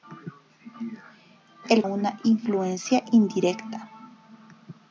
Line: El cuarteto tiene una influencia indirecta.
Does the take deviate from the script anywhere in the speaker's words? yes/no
yes